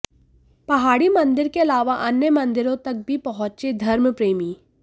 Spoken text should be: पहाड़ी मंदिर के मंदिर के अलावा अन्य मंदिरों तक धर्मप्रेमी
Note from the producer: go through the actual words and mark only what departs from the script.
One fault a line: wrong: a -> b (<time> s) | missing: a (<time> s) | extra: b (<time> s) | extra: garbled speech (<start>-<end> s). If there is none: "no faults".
missing: मंदिर के (1.6 s)
extra: भी पहुंचे (3.1 s)